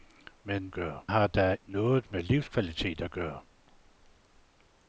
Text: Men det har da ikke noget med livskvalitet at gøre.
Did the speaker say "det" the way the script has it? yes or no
no